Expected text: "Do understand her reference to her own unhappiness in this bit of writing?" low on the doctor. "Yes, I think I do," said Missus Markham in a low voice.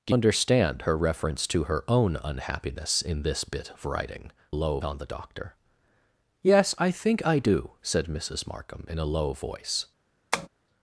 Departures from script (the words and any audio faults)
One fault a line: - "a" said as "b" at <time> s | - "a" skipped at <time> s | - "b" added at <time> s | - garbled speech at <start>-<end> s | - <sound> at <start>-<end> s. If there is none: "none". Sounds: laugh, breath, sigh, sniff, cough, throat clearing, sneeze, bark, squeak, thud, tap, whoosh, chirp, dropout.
- tap at 10.3-10.5 s